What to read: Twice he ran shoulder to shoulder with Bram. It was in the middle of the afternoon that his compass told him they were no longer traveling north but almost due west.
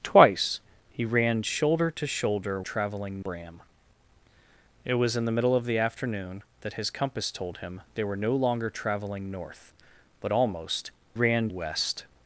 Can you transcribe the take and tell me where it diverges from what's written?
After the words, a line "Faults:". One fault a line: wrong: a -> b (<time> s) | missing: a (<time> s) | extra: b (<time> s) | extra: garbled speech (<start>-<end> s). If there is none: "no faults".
Twice he ran shoulder to shoulder traveling Bram. It was in the middle of the afternoon that his compass told him they were no longer traveling north but almost ran west.
Faults:
wrong: with -> traveling (2.6 s)
wrong: due -> ran (11.1 s)